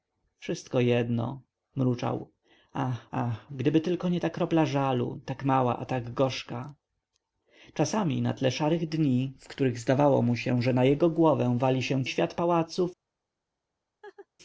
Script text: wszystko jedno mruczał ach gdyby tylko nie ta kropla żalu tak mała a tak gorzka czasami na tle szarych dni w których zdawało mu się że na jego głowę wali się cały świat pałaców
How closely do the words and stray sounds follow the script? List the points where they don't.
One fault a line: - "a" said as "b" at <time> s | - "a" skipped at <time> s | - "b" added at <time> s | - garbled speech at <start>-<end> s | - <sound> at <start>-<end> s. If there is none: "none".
- "ach" added at 3.1 s
- "cały" skipped at 12.0 s
- laugh at 14.0-14.3 s